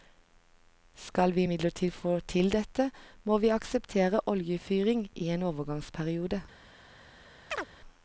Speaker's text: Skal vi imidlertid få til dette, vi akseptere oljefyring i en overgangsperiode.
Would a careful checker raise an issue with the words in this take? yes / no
yes